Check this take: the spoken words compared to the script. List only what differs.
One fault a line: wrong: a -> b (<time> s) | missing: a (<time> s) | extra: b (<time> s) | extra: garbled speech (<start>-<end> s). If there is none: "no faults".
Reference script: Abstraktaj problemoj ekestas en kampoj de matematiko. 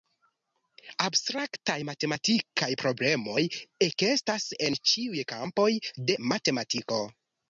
extra: matematikaj (1.9 s)
extra: ĉiuj (4.9 s)